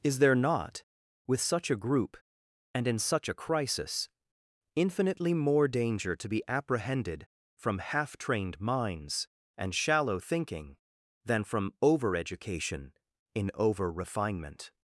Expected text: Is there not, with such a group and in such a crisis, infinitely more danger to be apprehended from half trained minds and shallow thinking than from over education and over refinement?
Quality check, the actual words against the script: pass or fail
fail